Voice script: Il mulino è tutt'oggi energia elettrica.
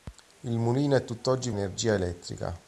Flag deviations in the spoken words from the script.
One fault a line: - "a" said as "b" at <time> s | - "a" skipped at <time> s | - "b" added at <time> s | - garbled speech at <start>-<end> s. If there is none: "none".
none